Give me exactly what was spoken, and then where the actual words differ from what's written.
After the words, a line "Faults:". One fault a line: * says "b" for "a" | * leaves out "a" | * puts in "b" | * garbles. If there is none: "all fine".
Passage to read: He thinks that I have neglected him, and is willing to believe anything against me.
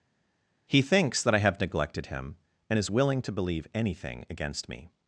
He thinks that I have neglected him, and is willing to believe anything against me.
Faults:
all fine